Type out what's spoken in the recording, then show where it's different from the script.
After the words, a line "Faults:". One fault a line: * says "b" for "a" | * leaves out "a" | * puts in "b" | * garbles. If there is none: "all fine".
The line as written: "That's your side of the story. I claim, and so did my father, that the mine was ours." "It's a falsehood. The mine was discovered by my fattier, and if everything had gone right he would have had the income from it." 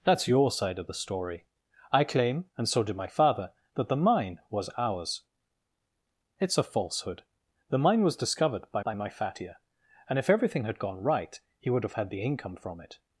"That's your side of the story. I claim, and so did my father, that the mine was ours." "It's a falsehood. The mine was discovered by by my fattier, and if everything had gone right he would have had the income from it."
Faults:
* puts in "by"